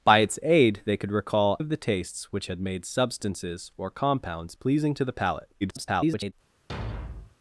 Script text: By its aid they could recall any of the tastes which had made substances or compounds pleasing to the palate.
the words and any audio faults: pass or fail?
fail